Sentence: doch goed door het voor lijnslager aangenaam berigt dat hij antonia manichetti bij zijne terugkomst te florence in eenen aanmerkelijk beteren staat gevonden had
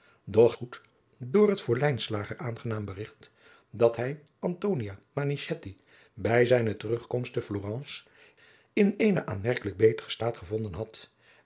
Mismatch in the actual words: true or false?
false